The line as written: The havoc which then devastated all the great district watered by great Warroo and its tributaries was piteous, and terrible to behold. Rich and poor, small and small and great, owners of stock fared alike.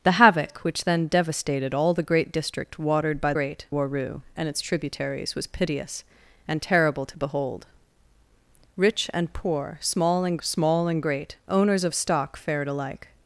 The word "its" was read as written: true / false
true